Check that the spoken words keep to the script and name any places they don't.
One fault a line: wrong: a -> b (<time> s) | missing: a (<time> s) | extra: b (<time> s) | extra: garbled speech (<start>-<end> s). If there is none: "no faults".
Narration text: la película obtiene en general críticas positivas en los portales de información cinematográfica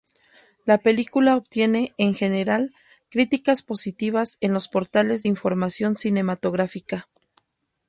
no faults